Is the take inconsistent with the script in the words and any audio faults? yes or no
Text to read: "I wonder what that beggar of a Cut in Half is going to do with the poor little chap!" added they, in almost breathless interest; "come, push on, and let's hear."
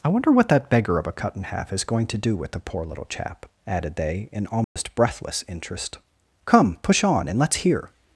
yes